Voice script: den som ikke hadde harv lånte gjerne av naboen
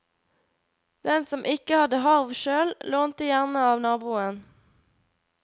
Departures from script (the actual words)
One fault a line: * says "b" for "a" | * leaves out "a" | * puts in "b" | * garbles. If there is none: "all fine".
* puts in "sjøl"